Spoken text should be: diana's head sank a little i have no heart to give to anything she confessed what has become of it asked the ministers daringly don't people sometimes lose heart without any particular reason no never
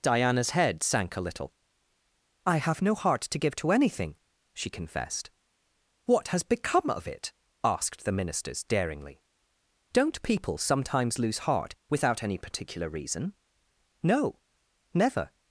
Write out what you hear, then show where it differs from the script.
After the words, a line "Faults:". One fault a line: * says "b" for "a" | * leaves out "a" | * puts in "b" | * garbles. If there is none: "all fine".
diana's head sank a little i have no heart to give to anything she confessed what has become of it asked the ministers daringly don't people sometimes lose heart without any particular reason no never
Faults:
all fine